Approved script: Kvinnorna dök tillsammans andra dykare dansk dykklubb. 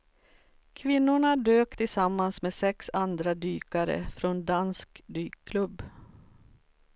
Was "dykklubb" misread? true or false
false